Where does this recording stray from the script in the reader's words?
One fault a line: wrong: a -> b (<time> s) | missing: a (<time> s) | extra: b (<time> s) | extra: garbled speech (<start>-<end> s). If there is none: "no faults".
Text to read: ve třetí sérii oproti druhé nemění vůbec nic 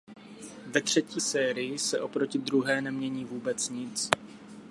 extra: se (1.8 s)